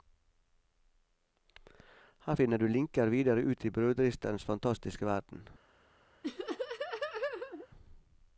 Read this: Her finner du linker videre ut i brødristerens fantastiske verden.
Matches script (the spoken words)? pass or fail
pass